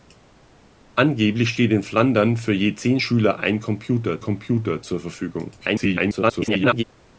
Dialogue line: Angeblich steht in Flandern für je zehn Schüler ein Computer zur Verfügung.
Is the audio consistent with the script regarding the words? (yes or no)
no